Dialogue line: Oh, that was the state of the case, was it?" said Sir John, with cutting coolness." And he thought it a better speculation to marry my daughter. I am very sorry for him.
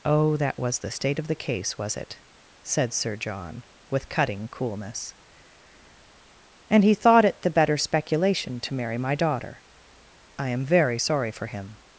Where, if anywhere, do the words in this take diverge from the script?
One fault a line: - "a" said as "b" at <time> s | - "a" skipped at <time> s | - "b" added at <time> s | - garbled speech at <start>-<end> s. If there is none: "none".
- "a" said as "the" at 7.4 s